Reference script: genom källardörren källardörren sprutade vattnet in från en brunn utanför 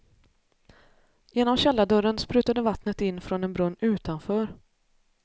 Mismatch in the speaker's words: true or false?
true